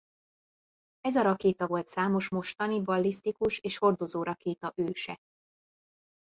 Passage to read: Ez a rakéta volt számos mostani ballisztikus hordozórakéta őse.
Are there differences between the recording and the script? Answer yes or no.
yes